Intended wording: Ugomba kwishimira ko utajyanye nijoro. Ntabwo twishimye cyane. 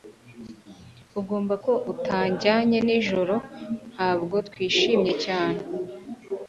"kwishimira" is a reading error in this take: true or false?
true